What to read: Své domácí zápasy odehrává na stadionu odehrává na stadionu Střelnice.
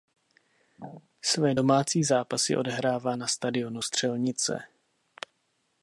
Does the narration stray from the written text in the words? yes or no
yes